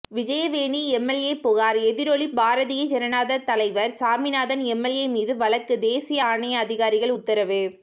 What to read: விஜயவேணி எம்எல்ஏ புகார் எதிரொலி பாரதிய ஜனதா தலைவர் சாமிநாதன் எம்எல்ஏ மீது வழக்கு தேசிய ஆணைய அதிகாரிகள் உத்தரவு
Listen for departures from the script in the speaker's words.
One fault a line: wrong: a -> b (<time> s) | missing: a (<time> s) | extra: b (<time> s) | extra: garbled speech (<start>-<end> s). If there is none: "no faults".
no faults